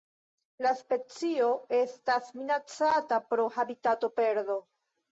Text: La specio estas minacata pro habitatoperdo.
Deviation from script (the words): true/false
false